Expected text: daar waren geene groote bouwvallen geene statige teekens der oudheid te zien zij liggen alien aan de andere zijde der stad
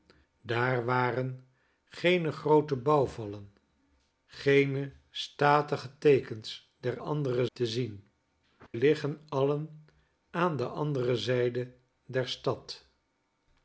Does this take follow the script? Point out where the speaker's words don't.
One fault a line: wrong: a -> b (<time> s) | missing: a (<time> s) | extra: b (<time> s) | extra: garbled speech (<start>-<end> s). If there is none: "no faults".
wrong: oudheid -> andere (7.0 s)
missing: zij (8.1 s)